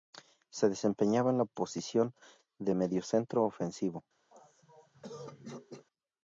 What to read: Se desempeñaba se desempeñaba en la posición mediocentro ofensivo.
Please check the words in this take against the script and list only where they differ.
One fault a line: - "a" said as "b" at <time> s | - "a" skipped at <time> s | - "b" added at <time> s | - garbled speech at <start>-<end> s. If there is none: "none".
- "se desempeñaba" skipped at 1.3 s
- "de" added at 2.6 s